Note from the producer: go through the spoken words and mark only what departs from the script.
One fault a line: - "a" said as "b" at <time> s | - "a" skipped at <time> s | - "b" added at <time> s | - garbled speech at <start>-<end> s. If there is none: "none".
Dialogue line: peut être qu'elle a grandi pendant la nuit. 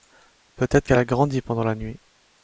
none